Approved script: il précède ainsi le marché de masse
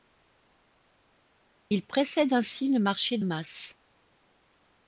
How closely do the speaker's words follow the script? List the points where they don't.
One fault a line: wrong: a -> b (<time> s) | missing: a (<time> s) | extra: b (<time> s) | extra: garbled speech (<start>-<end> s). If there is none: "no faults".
missing: de (3.2 s)